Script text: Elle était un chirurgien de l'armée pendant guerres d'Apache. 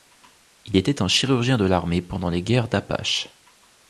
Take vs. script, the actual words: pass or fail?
fail